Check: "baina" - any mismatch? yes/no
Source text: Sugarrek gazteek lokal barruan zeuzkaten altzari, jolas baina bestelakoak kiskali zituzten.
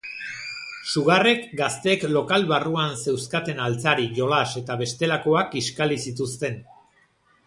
yes